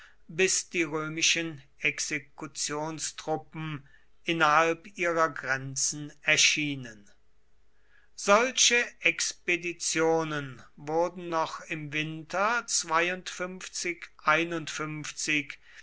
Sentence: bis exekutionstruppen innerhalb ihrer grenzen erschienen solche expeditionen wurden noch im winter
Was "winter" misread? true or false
false